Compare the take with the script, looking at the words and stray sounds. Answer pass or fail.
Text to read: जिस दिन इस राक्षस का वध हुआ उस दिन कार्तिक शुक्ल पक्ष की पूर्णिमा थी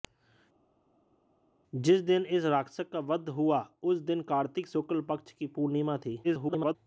fail